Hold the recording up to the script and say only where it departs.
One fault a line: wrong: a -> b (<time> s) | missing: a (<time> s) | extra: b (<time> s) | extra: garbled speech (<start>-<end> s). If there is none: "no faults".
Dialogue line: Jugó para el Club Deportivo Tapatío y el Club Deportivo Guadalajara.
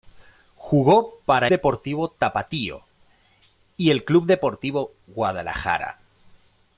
missing: el Club (1.5 s)